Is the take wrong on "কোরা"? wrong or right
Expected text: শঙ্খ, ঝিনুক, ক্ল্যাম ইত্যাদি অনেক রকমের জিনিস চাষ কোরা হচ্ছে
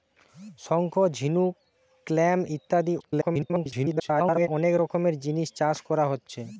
right